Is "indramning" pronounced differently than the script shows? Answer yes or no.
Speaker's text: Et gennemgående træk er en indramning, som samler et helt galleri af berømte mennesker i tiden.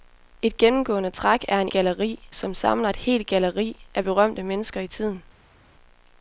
yes